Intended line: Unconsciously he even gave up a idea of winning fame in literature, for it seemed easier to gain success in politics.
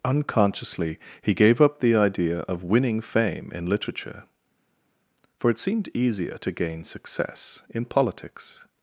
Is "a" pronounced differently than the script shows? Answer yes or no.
yes